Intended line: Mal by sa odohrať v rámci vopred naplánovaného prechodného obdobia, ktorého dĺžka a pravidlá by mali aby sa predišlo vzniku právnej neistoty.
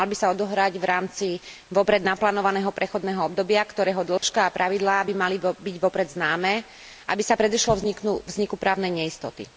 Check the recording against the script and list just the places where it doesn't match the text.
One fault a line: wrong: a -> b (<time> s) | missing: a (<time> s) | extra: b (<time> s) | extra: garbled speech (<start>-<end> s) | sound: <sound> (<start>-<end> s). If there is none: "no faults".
sound: dropout (4.2-4.2 s)
extra: byť vopred známe (5.4 s)